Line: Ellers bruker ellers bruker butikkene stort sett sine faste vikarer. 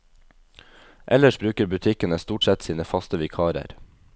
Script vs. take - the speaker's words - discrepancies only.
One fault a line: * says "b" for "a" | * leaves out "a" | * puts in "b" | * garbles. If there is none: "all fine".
* leaves out "ellers bruker"